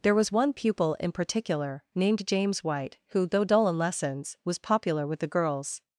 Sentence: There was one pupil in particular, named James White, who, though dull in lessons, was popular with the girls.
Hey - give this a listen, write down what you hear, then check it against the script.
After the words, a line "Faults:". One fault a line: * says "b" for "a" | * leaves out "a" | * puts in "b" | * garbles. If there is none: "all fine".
There was one pupil in particular, named James White, who, though dull in lessons, was popular with the girls.
Faults:
all fine